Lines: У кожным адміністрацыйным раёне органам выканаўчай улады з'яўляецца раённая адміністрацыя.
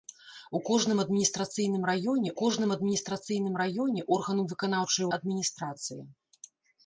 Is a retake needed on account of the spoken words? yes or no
yes